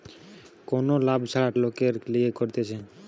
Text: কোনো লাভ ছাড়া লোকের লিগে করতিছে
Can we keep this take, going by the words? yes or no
yes